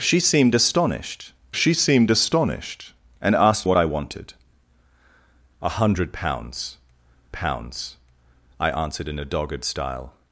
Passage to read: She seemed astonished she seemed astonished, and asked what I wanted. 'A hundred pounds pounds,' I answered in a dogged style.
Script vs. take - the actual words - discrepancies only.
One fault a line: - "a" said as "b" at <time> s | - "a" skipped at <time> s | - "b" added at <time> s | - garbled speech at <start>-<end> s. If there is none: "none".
none